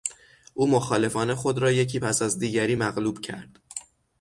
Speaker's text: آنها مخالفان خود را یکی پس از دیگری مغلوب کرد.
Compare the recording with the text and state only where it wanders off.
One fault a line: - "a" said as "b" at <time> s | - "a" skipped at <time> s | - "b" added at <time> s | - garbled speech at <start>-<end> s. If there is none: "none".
- "آنها" said as "او" at 0.5 s